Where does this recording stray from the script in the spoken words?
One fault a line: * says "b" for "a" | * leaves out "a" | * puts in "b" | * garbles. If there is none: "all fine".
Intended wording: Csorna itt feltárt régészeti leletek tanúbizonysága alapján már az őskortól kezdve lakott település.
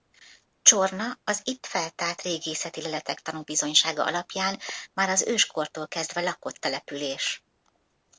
* puts in "az"